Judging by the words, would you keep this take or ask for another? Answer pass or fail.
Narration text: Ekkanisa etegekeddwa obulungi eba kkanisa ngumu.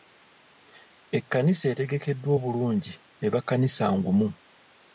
pass